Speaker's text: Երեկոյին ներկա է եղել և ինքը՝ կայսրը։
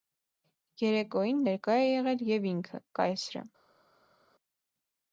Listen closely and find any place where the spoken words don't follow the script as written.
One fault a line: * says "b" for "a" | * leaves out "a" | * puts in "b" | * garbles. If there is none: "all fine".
all fine